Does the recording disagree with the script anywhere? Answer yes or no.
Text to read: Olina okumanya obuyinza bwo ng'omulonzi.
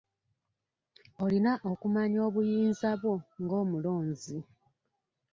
no